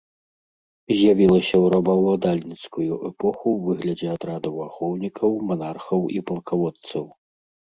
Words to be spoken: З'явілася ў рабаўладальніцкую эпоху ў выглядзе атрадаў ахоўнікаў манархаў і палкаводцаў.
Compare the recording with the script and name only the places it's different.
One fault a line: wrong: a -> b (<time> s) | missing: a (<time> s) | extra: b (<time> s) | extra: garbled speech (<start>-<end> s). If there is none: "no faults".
no faults